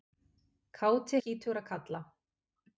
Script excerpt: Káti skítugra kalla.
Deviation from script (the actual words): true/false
false